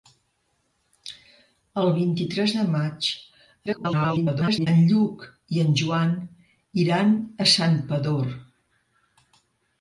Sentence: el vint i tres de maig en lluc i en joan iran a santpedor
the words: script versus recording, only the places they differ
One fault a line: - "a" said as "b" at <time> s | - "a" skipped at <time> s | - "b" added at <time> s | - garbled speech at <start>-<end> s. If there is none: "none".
- garbled speech at 3.7-4.7 s